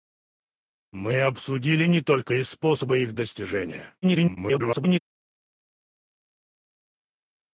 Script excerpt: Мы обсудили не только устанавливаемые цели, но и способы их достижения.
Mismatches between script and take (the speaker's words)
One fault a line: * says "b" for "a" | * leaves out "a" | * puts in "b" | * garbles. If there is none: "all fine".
* leaves out "устанавливаемые цели но"
* garbles